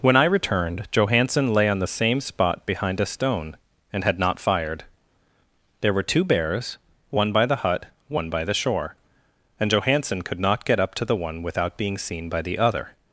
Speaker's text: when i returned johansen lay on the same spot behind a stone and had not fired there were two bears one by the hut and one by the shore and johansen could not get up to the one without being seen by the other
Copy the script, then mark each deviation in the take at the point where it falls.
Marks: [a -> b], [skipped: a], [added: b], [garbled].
when i returned johansen lay on the same spot behind a stone and had not fired there were two bears one by the hut [skipped: and] one by the shore and johansen could not get up to the one without being seen by the other